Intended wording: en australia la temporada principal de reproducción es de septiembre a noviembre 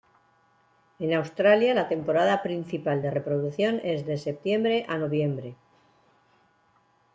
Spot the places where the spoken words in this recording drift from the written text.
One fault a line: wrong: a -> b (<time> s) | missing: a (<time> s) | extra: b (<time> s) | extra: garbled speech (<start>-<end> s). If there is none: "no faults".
no faults